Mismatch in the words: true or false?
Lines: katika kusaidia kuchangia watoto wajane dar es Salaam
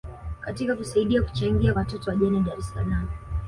false